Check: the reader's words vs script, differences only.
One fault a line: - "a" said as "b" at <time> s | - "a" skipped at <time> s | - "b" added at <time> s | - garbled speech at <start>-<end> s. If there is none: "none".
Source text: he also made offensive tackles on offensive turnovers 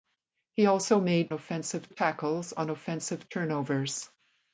none